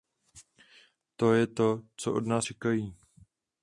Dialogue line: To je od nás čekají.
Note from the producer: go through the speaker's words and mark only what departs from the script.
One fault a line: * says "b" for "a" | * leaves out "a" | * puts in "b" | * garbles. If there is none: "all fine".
* puts in "to co"